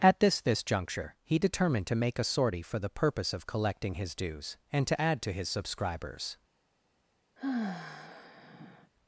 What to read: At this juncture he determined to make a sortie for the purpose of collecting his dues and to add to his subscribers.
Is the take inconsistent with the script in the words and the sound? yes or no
yes